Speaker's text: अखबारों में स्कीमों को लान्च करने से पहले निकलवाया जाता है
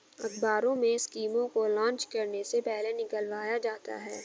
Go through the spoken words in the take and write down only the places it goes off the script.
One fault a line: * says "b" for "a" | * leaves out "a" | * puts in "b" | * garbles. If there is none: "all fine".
all fine